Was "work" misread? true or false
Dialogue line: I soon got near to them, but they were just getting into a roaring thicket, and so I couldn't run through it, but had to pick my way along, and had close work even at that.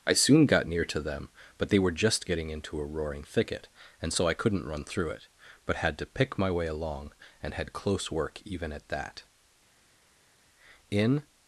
false